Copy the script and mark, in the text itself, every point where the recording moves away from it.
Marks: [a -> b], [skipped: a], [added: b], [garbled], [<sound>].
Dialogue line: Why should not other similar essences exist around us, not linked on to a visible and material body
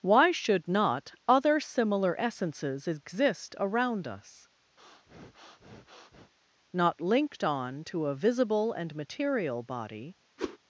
Why should not other similar essences exist around us, [breath] not linked on to a visible and material body [whoosh]